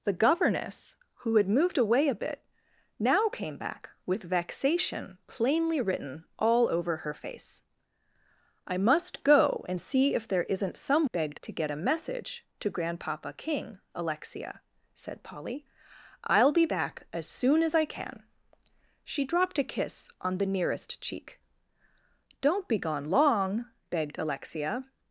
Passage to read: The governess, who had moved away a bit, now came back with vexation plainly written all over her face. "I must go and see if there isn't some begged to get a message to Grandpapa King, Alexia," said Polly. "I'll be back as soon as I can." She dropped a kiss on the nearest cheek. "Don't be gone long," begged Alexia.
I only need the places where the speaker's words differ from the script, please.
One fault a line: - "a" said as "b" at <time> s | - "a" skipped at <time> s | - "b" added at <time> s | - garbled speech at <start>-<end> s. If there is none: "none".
none